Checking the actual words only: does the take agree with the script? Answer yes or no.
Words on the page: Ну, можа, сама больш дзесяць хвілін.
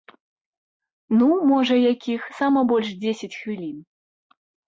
no